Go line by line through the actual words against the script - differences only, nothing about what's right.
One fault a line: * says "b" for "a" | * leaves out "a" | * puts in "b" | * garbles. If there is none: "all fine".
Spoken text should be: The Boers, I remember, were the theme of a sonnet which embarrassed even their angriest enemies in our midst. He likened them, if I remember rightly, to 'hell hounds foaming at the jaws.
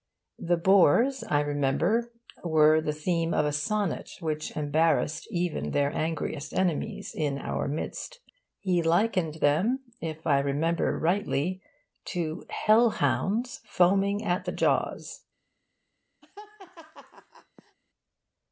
all fine